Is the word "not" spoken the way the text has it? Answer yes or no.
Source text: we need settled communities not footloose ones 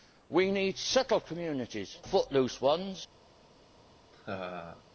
no